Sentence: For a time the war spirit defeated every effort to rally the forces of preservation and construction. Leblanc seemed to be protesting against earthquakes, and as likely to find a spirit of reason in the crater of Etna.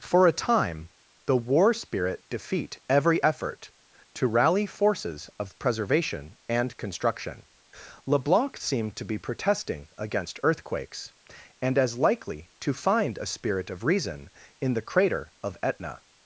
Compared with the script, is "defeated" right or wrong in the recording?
wrong